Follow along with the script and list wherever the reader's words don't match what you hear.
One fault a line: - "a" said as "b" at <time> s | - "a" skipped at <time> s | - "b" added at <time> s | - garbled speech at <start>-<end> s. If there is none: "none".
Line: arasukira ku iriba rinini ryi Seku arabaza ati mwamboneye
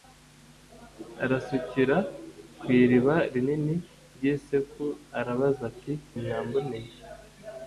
none